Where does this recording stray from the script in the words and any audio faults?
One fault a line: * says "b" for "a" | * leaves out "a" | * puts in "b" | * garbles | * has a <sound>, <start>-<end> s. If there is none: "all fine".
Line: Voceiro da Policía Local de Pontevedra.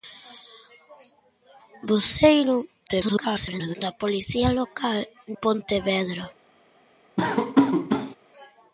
* garbles
* leaves out "de"
* has a laugh, 7.2-8.2 s